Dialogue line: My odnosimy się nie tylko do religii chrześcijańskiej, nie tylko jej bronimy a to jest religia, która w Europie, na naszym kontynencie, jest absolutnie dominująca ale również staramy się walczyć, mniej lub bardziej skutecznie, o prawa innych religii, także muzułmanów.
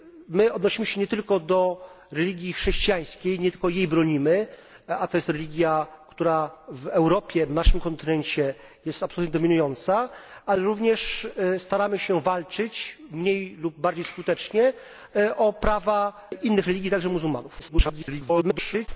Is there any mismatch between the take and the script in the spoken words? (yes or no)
yes